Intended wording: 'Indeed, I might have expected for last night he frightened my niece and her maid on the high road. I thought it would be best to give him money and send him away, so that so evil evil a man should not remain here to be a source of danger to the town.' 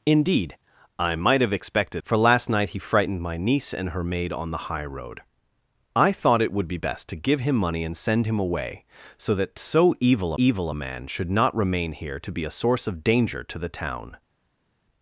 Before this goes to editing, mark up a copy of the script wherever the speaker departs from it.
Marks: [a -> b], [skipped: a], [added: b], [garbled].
'Indeed, I might have expected for last night he frightened my niece and her maid on the high road. I thought it would be best to give him money and send him away, so that so evil evil a man should not remain here to be a source of danger to the town.'